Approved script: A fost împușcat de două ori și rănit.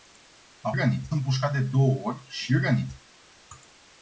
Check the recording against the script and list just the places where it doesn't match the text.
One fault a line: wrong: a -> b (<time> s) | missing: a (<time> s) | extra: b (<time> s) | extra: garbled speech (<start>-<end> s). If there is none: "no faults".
wrong: fost -> rănit (0.8 s)